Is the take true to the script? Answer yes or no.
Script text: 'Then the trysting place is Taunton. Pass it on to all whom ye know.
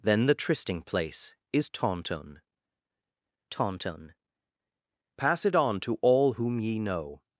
no